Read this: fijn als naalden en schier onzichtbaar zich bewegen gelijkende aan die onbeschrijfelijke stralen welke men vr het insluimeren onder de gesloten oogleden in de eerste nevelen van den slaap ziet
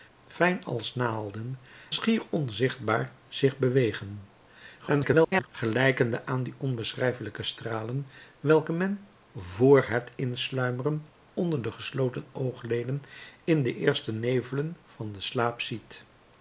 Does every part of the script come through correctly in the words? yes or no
no